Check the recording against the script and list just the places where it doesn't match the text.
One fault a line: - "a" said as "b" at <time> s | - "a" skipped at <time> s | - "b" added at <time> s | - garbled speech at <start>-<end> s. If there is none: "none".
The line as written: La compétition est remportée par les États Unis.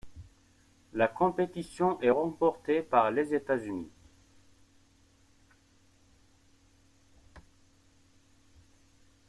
none